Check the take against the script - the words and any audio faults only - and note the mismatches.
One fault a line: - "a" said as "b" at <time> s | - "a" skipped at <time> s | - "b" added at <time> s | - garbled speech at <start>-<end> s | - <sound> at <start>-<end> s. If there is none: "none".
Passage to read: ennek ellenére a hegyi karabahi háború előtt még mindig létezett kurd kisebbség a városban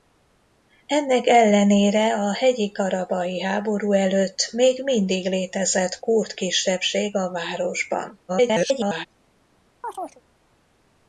- garbled speech at 8.3-9.1 s
- chirp at 9.8-10.2 s